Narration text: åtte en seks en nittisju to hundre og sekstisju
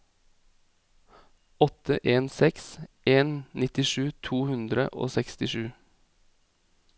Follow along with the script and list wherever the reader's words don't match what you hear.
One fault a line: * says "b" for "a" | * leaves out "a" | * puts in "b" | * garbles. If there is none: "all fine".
all fine